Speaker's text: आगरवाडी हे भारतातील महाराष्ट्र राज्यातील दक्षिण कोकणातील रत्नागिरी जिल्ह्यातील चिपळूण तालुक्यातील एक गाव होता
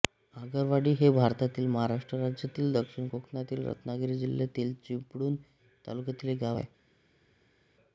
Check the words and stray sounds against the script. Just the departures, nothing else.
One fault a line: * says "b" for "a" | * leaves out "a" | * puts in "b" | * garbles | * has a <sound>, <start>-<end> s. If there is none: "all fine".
* says "आहे" for "होता"